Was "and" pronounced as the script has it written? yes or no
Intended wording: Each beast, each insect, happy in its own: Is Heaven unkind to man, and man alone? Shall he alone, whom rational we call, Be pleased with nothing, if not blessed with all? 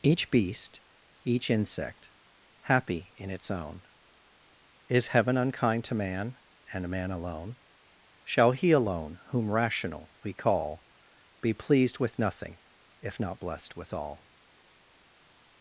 yes